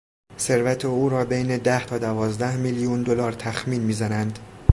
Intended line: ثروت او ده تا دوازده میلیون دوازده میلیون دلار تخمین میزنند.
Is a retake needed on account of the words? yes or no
yes